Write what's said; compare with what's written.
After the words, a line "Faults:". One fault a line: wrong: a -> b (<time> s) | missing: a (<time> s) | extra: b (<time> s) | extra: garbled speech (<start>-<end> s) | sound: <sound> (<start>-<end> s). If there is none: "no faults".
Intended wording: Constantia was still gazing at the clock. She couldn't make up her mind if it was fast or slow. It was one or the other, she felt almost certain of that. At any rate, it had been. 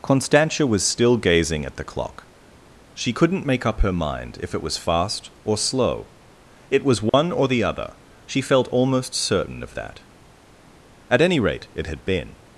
Constantia was still gazing at the clock. She couldn't make up her mind if it was fast or slow. It was one or the other, she felt almost certain of that. At any rate, it had been.
Faults:
sound: dropout (7.1-7.1 s)